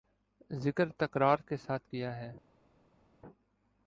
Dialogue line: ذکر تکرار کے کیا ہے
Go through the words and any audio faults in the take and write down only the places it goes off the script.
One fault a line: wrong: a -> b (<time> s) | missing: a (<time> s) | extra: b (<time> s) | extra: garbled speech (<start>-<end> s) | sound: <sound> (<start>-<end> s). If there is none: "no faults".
extra: ساتھ (1.6 s)